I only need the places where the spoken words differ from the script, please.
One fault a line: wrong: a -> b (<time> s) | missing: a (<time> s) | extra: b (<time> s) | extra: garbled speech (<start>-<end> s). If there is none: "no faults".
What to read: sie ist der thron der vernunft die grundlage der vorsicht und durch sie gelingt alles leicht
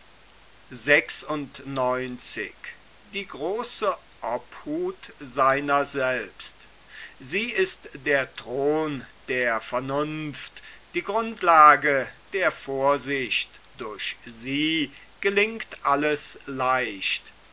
missing: und (13.6 s)